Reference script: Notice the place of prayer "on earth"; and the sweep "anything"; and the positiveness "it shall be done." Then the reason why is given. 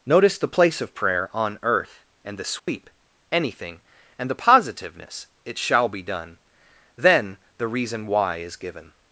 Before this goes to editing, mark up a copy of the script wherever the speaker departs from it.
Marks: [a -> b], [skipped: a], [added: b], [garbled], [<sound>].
Notice the place of prayer "on earth"; and the sweep [dropout] "anything"; and the positiveness "it shall be done." Then the reason why is given.